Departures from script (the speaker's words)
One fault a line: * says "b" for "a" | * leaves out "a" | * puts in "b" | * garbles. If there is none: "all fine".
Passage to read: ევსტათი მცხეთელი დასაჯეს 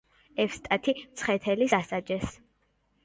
all fine